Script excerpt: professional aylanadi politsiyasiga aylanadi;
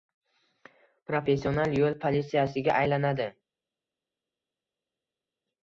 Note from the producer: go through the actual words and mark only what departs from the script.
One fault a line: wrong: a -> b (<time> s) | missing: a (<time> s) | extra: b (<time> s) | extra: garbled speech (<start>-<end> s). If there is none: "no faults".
wrong: aylanadi -> yo'l (1.8 s)